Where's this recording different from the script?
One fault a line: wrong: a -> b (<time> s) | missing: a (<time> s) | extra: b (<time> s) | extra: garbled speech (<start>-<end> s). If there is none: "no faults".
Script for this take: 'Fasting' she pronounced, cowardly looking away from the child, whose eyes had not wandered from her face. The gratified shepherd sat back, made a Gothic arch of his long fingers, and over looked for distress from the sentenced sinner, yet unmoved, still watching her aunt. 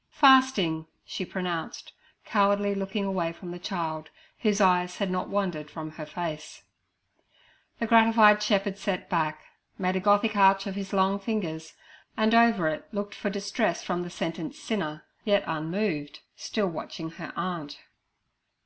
extra: it (12.7 s)